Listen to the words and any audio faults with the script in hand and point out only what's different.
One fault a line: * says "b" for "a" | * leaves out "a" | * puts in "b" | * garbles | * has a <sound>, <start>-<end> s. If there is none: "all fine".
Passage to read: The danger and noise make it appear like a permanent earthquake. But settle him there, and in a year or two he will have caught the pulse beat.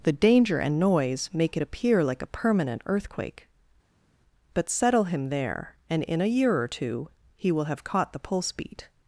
all fine